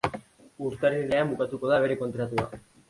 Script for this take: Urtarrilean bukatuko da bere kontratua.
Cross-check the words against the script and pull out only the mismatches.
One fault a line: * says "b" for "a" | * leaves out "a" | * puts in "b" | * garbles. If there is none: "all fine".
all fine